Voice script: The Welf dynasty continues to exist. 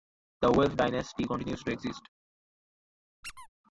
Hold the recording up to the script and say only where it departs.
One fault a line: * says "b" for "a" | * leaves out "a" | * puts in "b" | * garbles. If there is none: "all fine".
all fine